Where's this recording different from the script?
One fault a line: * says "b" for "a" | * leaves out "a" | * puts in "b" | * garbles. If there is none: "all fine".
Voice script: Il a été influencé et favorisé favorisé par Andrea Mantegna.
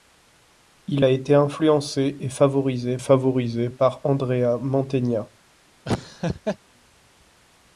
all fine